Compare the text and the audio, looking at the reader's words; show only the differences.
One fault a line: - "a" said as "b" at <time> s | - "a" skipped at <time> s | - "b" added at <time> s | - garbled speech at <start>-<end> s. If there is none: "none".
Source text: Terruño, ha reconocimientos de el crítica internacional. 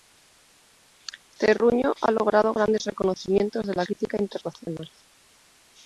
- "logrado grandes" added at 2.1 s
- "el" said as "la" at 3.8 s